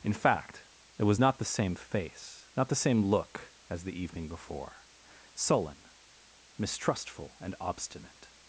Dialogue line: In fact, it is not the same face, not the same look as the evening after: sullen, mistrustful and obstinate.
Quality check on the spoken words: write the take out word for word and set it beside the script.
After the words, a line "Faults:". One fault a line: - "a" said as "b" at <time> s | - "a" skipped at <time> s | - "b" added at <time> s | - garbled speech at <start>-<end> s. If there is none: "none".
In fact, it was not the same face, not the same look as the evening before: sullen, mistrustful and obstinate.
Faults:
- "is" said as "was" at 1.0 s
- "after" said as "before" at 4.3 s